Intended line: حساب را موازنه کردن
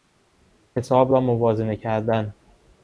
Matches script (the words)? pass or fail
pass